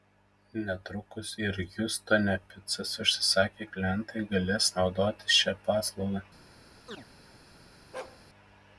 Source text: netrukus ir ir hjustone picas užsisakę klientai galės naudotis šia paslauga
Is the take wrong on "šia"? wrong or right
right